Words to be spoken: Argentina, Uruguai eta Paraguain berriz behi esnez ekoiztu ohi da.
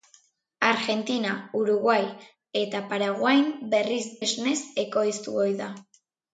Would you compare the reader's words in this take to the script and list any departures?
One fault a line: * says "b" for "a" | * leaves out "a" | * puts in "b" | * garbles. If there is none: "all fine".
* leaves out "behi"